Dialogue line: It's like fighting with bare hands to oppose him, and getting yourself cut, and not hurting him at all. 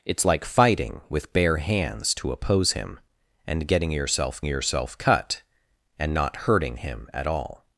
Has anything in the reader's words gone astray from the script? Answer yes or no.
yes